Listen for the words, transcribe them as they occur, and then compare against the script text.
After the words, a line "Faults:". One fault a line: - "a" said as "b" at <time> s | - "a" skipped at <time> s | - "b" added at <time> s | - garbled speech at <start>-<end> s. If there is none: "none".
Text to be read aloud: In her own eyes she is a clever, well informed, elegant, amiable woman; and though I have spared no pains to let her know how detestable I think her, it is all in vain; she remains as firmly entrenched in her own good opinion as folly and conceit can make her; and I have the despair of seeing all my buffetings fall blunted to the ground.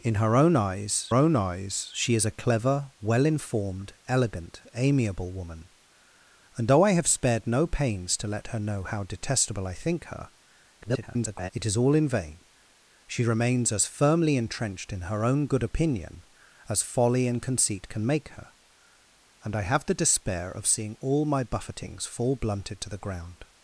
In her own eyes own eyes she is a clever, well informed, elegant, amiable woman; and though I have spared no pains to let her know how detestable I think her, [garbled] it is all in vain; she remains as firmly entrenched in her own good opinion as folly and conceit can make her; and I have the despair of seeing all my buffetings fall blunted to the ground.
Faults:
- "own eyes" added at 1.1 s
- garbled speech at 10.8-11.5 s